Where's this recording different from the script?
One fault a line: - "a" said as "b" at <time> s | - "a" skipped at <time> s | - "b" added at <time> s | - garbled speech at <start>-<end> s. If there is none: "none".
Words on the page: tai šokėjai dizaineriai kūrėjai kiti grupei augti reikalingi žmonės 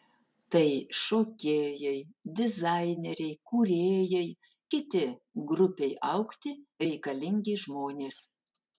none